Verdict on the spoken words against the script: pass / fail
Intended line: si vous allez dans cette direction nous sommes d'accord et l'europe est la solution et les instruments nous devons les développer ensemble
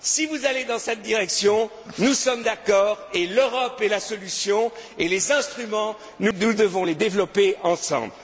pass